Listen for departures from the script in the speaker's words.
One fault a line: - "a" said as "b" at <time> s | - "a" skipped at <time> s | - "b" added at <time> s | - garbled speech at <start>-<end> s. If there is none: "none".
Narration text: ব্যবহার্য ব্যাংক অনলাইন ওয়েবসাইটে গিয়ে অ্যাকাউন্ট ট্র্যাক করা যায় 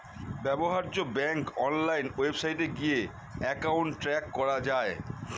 none